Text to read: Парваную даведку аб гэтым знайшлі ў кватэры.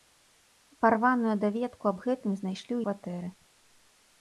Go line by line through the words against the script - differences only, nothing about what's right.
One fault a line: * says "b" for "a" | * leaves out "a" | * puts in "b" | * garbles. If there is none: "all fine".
all fine